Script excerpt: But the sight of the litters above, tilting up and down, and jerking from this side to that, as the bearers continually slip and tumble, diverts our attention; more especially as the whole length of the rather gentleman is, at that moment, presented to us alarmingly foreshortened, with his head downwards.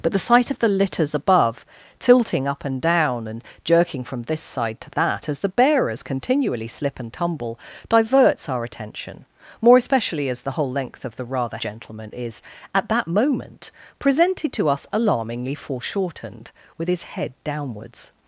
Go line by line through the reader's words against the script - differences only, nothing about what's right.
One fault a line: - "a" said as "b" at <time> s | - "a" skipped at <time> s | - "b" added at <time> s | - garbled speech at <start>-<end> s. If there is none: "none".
none